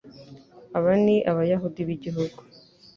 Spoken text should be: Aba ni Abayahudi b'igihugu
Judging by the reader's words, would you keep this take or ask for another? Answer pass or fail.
pass